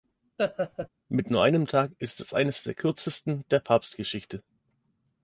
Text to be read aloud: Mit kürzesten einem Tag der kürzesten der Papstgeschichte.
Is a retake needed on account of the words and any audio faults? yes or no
yes